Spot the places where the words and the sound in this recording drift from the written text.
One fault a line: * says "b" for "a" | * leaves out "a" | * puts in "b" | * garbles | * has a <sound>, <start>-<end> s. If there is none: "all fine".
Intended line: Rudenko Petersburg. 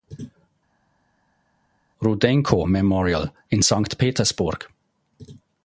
* puts in "Memorial in Sankt"